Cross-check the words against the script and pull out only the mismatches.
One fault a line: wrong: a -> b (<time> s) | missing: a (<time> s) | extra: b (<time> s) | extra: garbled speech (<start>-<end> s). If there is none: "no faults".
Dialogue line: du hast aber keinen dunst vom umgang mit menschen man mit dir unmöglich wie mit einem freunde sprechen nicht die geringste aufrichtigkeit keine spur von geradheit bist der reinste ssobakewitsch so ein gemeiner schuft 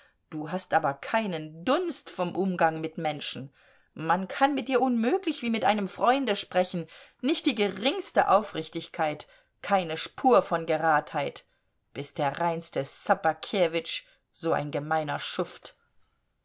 extra: kann (4.3 s)